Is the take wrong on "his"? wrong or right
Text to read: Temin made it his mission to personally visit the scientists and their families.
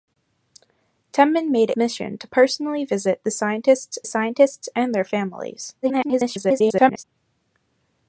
wrong